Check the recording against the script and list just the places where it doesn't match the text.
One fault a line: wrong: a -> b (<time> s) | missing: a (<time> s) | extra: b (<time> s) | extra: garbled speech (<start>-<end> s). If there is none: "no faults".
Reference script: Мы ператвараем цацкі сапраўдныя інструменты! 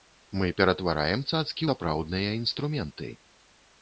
no faults